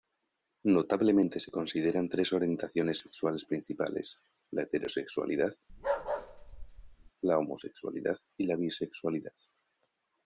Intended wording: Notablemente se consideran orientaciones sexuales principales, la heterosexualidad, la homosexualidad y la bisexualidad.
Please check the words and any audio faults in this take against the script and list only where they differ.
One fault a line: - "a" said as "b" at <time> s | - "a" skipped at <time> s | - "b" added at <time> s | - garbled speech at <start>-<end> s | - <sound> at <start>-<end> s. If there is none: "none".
- "tres" added at 2.1 s
- bark at 5.7-7.1 s